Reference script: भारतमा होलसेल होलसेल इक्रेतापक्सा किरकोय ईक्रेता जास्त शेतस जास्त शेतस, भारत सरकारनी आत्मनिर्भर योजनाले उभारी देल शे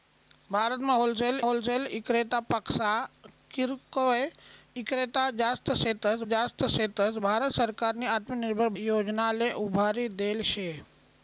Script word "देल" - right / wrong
right